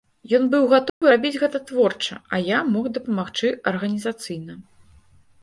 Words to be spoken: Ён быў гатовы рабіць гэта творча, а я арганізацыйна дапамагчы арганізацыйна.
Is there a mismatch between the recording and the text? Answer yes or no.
yes